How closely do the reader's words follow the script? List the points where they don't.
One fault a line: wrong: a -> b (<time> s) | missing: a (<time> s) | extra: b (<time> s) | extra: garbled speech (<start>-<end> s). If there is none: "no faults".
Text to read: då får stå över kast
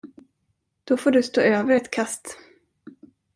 extra: du (1.1 s)
extra: ett (1.7 s)